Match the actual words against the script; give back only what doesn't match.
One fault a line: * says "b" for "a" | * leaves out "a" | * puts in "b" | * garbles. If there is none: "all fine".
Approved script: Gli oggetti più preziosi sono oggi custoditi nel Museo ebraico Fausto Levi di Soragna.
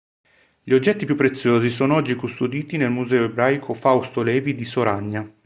all fine